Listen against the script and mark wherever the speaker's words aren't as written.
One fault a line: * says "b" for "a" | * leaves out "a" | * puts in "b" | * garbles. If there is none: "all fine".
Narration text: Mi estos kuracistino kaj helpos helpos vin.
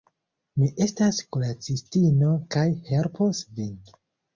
* says "estas" for "estos"
* leaves out "helpos"